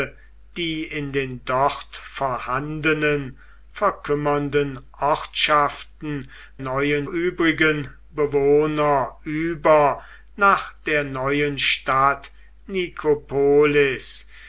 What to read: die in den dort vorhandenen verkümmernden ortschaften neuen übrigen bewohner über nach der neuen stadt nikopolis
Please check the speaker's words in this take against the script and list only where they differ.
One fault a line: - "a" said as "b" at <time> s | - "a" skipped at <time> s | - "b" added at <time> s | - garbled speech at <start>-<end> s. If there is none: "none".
none